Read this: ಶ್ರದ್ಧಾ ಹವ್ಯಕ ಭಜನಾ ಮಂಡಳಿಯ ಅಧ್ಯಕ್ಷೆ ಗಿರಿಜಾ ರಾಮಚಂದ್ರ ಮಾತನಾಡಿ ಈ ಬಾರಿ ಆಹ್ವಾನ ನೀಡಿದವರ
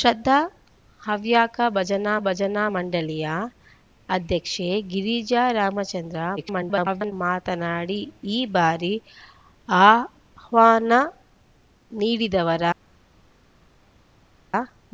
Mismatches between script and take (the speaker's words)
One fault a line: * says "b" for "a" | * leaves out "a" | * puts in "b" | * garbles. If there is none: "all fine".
* puts in "ಭಜನಾ"
* garbles